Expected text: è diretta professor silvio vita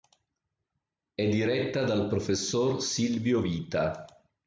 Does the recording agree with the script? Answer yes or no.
no